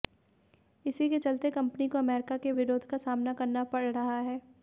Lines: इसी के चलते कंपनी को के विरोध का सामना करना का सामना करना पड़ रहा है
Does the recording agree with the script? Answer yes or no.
no